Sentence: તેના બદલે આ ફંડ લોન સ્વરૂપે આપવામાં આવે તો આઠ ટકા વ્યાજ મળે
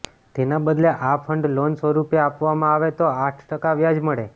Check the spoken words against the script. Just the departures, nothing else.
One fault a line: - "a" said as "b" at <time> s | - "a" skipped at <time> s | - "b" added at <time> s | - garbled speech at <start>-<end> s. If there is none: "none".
none